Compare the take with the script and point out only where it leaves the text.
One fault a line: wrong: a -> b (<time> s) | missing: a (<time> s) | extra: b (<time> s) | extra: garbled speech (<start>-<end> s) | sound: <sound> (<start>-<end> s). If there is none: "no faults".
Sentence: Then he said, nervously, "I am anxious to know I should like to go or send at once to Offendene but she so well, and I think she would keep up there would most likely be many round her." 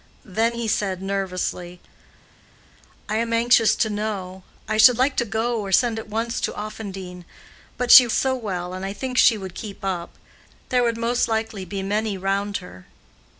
no faults